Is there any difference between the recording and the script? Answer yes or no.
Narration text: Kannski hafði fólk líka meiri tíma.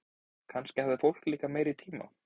no